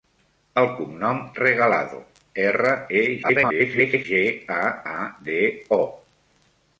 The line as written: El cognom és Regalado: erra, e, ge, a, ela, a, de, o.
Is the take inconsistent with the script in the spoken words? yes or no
yes